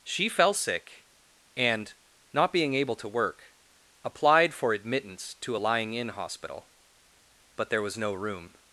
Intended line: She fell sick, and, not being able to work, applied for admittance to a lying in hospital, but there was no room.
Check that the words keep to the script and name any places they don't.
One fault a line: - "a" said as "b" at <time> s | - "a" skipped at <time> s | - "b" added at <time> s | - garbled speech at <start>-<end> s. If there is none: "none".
none